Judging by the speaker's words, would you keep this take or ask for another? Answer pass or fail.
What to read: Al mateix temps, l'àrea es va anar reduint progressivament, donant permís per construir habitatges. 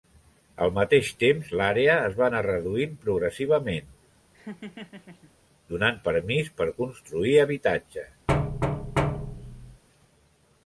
pass